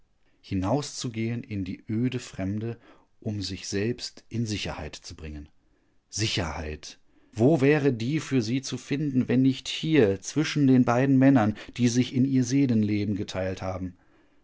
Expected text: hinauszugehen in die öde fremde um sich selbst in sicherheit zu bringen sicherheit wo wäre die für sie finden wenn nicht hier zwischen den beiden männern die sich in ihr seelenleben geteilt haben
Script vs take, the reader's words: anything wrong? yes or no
yes